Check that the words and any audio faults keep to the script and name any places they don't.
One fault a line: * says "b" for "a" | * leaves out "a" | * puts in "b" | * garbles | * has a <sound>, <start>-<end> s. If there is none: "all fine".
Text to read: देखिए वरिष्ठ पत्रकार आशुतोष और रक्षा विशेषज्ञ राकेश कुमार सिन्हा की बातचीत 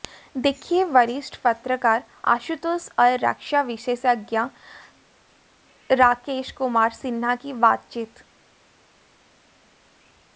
all fine